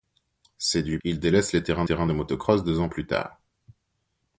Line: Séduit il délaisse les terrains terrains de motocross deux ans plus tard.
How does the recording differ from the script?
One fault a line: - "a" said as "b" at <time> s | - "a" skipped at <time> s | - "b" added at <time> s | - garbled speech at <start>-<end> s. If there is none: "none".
none